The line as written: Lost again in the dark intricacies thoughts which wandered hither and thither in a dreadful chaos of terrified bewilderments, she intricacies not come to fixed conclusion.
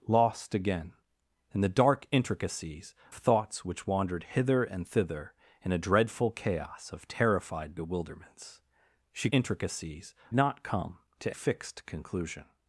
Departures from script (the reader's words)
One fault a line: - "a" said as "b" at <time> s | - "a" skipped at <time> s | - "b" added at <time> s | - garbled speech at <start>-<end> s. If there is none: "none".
none